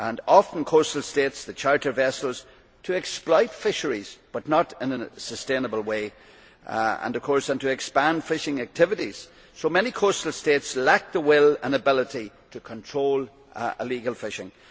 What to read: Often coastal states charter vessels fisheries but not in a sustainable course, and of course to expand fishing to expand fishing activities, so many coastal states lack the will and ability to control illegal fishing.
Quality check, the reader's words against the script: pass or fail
fail